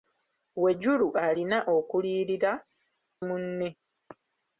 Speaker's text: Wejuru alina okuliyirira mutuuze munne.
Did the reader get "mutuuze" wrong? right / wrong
wrong